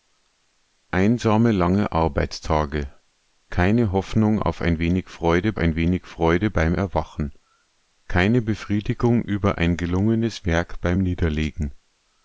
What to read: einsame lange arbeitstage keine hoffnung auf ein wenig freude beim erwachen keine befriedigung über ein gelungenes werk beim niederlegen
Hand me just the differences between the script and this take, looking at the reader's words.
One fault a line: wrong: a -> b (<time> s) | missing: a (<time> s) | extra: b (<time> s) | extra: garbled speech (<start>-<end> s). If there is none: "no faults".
extra: ein wenig freude (5.6 s)